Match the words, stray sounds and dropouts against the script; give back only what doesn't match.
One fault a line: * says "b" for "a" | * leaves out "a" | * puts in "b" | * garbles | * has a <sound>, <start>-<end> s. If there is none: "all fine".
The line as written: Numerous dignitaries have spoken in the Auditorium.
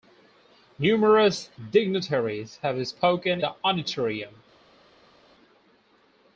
* leaves out "in"